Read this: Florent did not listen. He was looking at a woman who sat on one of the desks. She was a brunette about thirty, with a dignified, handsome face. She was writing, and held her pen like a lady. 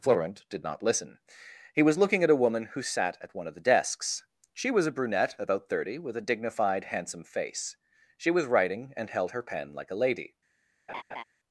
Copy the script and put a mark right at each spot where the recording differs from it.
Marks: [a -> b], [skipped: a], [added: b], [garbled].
Florent did not listen. He was looking at a woman who sat [on -> at] one of the desks. She was a brunette about thirty, with a dignified, handsome face. She was writing, and held her pen like a lady.